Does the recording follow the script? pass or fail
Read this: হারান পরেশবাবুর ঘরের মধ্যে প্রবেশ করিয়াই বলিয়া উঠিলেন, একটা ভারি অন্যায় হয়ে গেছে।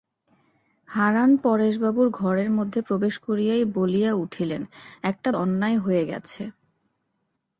fail